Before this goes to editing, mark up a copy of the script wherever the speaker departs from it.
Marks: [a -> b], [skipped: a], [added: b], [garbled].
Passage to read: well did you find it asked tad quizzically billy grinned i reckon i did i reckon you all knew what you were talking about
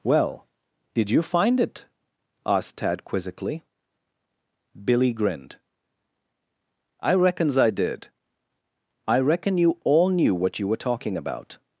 well did you find it asked tad quizzically billy grinned i [reckon -> reckons] i did i reckon you all knew what you were talking about